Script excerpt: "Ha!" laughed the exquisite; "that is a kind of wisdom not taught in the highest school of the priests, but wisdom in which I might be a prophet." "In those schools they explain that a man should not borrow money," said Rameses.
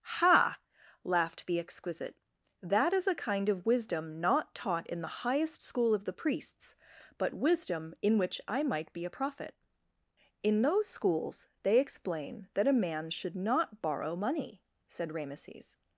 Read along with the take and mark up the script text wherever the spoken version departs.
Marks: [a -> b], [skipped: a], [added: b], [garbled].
"Ha!" laughed the exquisite; "that is a kind of wisdom not taught in the highest school of the priests, but wisdom in which I might be a prophet." "In those schools they explain that a man should not borrow money," said Rameses.